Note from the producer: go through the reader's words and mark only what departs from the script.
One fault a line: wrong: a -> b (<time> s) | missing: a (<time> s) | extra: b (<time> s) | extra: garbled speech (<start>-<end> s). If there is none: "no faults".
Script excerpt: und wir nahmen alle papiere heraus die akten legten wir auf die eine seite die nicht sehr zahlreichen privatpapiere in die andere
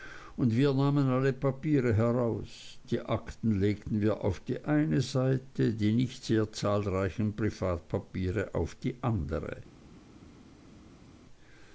wrong: in -> auf (8.6 s)